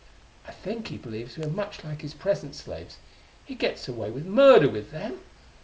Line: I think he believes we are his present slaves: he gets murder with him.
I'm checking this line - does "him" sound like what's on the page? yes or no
no